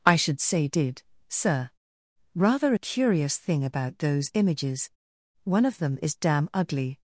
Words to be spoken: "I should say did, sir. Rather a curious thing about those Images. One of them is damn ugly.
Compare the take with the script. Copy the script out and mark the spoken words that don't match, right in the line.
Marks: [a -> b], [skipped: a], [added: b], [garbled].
"I should say did, sir. Rather a curious thing about those Images. One of them is damn ugly.